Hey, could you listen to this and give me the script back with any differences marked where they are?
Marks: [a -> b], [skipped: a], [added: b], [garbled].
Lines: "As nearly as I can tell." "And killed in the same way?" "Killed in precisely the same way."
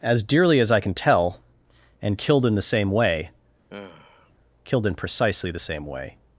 "As [nearly -> dearly] as I can tell." "And killed in the same way?" "Killed in precisely the same way."